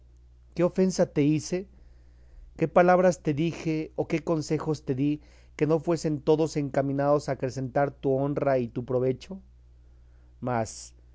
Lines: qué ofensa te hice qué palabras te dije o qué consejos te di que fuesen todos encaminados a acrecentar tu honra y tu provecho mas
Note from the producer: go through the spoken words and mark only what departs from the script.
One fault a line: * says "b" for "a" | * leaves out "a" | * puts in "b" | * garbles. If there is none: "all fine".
* puts in "no"